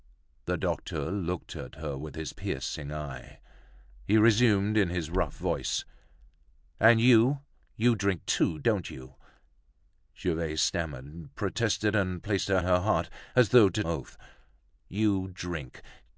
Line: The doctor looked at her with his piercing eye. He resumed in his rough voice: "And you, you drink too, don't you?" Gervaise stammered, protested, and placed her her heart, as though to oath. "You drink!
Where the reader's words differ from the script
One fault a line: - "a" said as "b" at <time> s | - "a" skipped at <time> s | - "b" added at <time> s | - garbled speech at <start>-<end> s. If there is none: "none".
none